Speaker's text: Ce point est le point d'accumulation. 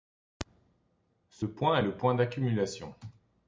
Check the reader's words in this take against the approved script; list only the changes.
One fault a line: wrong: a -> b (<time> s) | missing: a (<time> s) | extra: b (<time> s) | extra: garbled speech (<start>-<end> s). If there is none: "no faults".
no faults